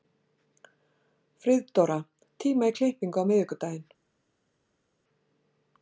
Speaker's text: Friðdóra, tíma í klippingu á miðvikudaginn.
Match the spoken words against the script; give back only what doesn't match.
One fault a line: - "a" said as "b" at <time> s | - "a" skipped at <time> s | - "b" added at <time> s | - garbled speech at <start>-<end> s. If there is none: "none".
none